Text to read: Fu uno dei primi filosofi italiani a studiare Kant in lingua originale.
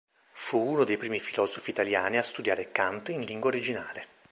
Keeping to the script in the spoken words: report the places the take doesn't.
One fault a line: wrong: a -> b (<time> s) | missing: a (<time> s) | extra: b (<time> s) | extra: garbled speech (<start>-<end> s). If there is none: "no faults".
no faults